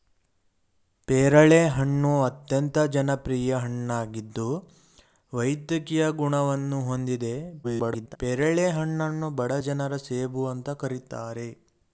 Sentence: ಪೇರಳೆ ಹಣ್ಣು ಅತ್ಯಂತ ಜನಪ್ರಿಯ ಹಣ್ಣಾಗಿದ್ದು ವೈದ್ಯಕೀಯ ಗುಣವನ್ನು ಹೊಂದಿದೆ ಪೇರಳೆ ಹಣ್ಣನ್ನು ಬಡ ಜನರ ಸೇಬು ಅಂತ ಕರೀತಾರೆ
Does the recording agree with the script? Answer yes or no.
no